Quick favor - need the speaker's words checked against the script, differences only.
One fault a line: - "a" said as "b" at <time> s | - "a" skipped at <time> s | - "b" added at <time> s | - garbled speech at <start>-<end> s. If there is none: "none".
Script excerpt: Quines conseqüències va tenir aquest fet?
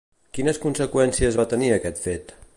none